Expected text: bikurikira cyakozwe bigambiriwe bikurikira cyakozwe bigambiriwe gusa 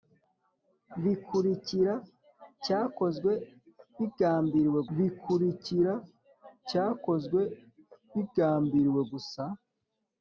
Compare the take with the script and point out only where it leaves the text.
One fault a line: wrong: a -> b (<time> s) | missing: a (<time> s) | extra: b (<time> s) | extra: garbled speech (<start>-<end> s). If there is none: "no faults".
no faults